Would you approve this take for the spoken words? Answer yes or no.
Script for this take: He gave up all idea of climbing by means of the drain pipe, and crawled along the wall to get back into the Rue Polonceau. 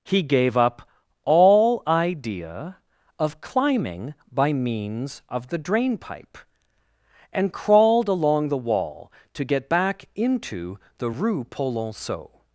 yes